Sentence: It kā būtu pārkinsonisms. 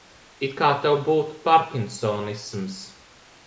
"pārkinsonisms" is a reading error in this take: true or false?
false